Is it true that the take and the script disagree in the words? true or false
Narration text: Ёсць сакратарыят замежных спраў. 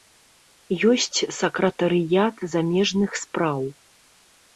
false